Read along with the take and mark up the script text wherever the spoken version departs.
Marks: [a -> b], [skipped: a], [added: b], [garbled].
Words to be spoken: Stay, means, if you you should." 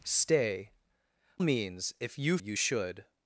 Stay, means, if you you should."